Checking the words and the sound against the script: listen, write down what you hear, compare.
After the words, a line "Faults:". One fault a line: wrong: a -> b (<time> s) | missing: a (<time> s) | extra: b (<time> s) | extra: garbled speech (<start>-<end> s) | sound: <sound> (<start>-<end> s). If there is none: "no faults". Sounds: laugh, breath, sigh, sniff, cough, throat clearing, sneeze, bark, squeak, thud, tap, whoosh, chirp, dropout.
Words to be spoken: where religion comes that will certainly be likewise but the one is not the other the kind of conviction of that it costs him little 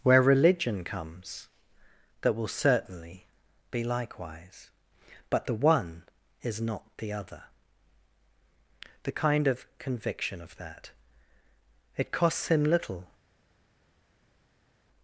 where religion comes that will certainly be likewise but the one is not the other the kind of conviction of that it costs him little
Faults:
no faults